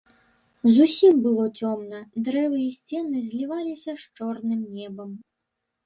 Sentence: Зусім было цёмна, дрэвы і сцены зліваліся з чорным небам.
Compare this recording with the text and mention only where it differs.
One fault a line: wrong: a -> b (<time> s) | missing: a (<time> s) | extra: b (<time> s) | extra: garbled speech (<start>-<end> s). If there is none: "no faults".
no faults